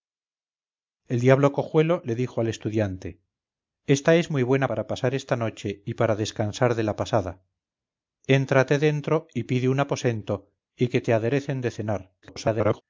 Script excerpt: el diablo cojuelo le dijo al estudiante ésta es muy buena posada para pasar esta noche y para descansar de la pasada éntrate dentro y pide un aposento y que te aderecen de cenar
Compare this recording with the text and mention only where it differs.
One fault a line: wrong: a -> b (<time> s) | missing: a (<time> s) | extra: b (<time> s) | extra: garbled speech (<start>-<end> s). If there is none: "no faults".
missing: posada (4.7 s)
extra: garbled speech (12.2-12.8 s)